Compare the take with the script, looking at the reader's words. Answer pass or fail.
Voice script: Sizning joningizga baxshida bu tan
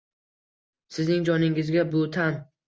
fail